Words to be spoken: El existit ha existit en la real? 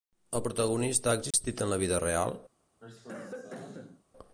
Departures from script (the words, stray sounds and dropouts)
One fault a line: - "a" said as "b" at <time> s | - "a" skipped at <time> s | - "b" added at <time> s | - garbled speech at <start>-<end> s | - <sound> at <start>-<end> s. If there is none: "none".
- "existit" said as "protagonista" at 0.5 s
- dropout at 1.3-1.3 s
- "vida" added at 1.9 s
- cough at 2.8-4.0 s